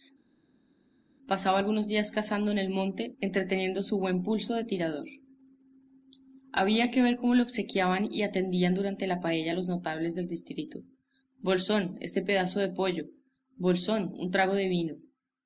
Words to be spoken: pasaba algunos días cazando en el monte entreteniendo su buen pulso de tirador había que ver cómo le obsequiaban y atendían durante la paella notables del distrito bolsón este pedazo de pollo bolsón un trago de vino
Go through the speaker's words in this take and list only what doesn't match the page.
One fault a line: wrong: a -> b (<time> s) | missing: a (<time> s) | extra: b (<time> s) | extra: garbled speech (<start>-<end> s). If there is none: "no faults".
extra: los (9.5 s)